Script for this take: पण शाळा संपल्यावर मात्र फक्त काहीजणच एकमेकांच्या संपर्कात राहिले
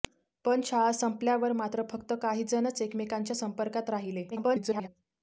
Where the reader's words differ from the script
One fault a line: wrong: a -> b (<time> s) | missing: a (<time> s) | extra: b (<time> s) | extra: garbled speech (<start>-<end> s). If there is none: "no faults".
extra: garbled speech (4.3-4.9 s)